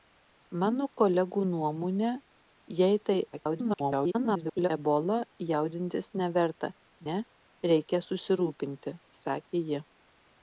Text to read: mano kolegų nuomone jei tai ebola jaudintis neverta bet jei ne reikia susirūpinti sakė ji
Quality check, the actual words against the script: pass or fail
fail